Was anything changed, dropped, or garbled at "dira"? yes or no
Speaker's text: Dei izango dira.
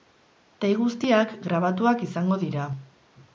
no